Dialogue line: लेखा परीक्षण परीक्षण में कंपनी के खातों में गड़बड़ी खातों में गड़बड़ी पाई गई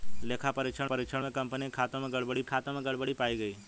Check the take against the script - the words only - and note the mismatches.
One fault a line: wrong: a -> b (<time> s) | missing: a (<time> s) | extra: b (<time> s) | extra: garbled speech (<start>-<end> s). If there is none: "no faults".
no faults